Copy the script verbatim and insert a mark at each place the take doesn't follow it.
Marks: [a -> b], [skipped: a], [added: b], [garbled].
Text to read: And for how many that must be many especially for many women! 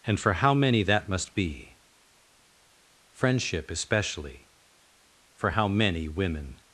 And for how many that must be [many -> friendship] especially for [added: how] many women!